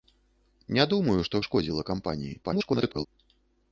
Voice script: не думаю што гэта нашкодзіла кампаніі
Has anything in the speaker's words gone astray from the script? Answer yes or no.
yes